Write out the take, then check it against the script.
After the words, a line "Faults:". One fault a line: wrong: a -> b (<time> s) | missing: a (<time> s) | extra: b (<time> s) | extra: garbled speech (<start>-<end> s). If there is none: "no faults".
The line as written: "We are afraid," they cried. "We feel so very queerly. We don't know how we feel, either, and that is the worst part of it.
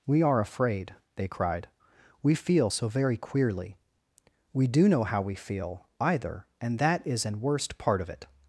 "We are afraid," they cried. "We feel so very queerly. We do know how we feel, either, and that is an worst part of it.
Faults:
wrong: don't -> do (4.7 s)
wrong: the -> an (7.3 s)